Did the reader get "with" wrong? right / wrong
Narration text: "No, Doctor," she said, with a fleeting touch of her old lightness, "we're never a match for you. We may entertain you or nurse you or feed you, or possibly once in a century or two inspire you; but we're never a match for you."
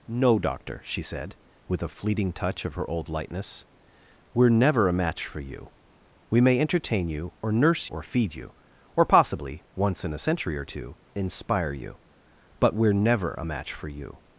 right